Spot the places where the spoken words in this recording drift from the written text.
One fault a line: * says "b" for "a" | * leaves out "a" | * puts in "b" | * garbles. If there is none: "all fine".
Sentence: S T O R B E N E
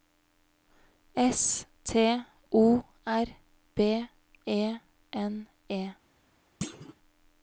all fine